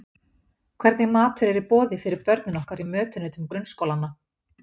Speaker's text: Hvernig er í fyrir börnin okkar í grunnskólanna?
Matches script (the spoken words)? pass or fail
fail